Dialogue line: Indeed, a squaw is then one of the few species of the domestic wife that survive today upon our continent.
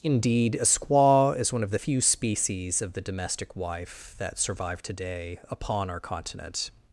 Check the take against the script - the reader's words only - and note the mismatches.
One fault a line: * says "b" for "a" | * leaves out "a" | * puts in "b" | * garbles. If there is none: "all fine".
* leaves out "then"